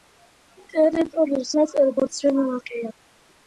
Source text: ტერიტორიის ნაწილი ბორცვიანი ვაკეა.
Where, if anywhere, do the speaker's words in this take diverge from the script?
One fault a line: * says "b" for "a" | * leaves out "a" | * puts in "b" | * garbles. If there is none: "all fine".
all fine